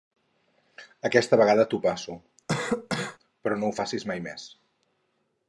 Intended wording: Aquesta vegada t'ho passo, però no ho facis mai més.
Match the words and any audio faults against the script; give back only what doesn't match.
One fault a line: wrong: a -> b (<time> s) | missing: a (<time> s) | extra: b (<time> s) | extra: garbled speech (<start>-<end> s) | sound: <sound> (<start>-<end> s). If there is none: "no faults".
sound: cough (2.5-3.2 s)